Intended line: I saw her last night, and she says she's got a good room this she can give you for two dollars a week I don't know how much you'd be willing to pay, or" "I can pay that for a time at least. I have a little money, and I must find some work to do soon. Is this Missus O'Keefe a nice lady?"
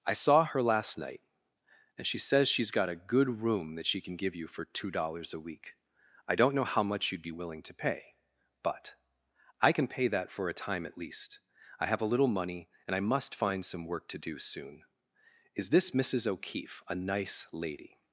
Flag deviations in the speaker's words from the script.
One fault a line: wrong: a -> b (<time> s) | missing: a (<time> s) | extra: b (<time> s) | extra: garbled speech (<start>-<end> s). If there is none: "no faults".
wrong: this -> that (3.8 s)
wrong: or -> but (8.6 s)